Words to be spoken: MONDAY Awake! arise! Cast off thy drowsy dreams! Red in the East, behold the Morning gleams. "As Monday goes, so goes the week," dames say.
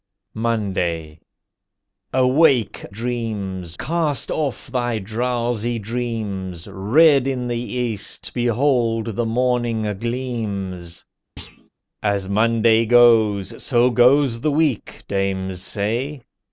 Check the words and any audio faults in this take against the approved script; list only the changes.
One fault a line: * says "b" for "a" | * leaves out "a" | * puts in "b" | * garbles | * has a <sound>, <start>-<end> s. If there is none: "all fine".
* says "dreams" for "arise"
* has a thud, 11.4-11.7 s